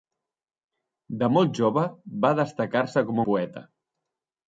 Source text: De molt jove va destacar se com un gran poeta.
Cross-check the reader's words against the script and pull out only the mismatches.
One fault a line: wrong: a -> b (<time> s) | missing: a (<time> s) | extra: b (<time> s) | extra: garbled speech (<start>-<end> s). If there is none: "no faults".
missing: un gran (3.2 s)